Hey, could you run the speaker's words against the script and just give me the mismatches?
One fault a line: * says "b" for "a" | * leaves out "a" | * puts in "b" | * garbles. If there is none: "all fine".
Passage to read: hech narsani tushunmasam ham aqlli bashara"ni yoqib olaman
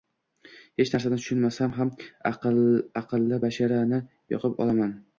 all fine